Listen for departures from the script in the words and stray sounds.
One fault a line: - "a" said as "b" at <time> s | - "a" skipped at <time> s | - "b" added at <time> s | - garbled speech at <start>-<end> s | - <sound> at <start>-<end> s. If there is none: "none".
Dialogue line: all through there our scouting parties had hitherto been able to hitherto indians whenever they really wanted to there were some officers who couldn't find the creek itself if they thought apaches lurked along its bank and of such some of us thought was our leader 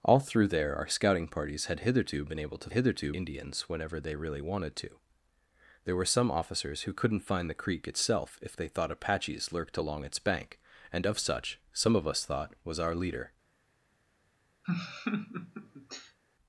- laugh at 14.6-16.2 s